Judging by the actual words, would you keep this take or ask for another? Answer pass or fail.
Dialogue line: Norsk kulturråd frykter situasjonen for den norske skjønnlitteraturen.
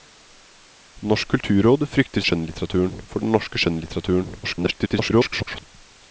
fail